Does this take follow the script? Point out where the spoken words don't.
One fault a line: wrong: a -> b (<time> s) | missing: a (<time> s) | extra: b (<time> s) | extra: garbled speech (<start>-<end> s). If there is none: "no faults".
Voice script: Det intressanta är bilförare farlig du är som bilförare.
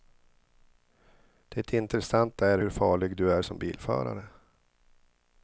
wrong: bilförare -> hur (2.6 s)